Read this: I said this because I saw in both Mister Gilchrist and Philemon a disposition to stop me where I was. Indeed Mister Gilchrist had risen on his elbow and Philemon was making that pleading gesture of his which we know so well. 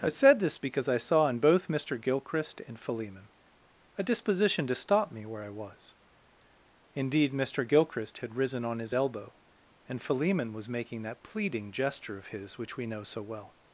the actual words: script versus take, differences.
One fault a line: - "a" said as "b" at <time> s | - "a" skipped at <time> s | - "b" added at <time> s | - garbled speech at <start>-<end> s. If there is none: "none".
none